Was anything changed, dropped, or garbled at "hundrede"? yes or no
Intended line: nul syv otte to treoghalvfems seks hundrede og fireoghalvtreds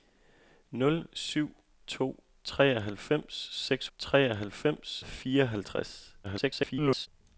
yes